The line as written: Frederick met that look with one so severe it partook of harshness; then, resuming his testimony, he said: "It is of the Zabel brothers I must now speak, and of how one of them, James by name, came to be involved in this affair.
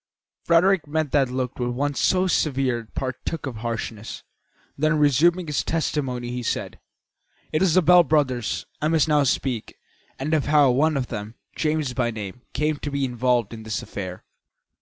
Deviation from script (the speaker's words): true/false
true